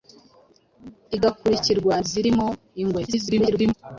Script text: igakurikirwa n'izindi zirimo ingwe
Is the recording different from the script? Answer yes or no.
yes